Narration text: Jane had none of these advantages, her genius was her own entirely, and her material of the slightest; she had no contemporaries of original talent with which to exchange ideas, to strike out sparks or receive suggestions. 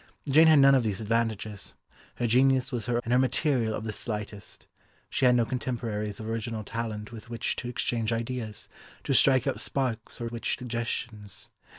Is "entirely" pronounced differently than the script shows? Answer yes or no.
yes